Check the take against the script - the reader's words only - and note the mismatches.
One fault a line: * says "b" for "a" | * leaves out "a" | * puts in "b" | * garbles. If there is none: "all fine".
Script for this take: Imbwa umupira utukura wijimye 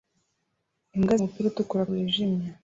all fine